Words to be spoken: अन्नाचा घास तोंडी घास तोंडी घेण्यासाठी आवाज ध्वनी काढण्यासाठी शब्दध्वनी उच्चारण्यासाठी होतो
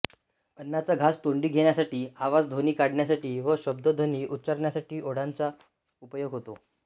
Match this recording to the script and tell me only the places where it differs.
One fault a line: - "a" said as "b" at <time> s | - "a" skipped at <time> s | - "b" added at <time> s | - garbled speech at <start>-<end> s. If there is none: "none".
- "घास तोंडी" skipped at 1.5 s
- "व" added at 3.4 s
- "ओठांचा उपयोग" added at 5.0 s